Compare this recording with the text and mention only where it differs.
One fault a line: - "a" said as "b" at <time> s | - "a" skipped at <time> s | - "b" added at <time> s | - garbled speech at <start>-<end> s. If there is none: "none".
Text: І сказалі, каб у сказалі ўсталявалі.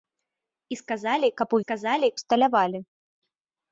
none